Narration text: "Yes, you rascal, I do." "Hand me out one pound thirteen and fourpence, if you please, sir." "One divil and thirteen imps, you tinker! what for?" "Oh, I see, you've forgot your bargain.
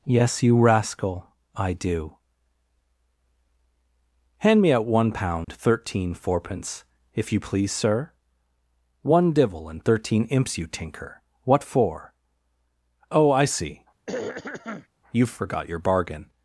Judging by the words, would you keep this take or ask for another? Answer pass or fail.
fail